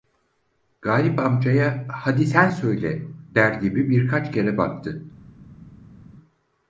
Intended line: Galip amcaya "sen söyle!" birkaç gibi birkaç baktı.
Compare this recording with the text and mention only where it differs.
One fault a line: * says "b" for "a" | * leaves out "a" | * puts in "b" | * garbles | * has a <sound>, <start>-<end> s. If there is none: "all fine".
* puts in "hadi"
* says "der" for "birkaç"
* puts in "kere"